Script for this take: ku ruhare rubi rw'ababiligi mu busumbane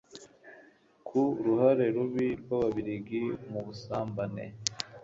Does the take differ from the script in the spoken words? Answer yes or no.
no